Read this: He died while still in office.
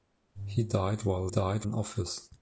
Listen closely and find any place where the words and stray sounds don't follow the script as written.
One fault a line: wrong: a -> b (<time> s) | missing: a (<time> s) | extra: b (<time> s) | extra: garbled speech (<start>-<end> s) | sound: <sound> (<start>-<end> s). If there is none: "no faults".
wrong: still -> died (1.3 s)